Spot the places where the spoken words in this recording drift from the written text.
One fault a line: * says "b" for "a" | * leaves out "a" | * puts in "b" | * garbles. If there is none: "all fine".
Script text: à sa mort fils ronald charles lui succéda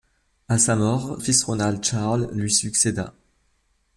all fine